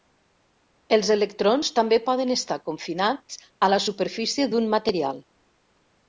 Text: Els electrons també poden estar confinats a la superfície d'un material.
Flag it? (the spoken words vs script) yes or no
no